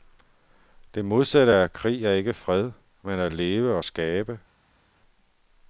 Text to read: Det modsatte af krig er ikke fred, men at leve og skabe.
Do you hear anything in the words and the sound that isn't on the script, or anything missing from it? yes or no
no